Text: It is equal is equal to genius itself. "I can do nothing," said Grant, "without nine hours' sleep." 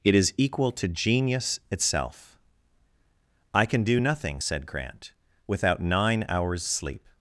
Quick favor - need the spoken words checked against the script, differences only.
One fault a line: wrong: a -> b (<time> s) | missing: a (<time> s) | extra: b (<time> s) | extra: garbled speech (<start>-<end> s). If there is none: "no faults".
missing: is equal (0.7 s)